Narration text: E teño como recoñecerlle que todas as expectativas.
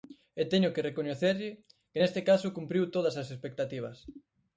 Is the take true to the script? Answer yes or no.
no